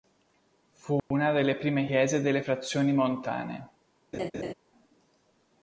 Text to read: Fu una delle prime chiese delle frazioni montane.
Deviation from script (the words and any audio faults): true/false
true